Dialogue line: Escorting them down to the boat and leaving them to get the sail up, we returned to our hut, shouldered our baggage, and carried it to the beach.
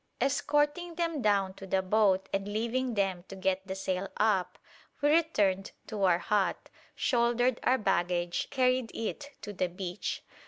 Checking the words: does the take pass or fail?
fail